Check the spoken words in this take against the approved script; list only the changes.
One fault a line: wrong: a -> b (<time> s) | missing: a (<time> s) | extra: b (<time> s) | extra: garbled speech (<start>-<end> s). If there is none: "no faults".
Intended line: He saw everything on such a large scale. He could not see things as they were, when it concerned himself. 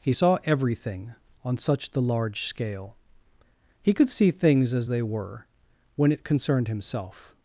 wrong: a -> the (1.9 s)
missing: not (4.1 s)